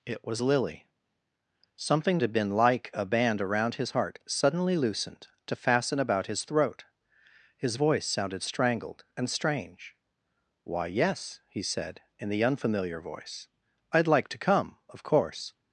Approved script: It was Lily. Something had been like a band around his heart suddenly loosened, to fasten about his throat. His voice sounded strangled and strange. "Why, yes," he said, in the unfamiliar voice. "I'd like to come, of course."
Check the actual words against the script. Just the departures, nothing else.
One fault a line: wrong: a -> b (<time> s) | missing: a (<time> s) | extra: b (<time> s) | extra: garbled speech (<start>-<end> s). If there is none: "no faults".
no faults